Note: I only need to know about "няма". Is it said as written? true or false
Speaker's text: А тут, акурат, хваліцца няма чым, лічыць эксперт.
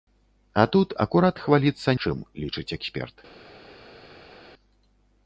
false